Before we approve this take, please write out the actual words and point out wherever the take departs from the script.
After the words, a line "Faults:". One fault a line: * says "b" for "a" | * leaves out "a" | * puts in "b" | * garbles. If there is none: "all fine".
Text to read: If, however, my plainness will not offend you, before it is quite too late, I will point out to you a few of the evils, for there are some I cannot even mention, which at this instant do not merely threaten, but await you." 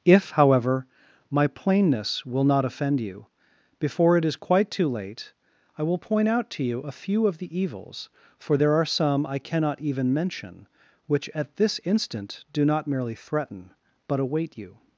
If, however, my plainness will not offend you, before it is quite too late, I will point out to you a few of the evils, for there are some I cannot even mention, which at this instant do not merely threaten, but await you."
Faults:
all fine